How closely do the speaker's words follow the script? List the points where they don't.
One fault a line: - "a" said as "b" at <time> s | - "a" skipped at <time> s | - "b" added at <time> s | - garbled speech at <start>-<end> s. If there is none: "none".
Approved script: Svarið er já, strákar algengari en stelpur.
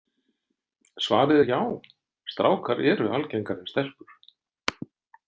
- "eru" added at 2.9 s